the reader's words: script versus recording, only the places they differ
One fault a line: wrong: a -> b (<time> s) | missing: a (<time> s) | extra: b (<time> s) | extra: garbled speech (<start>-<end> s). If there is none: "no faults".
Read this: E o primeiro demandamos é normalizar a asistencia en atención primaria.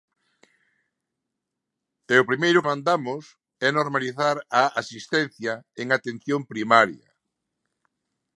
no faults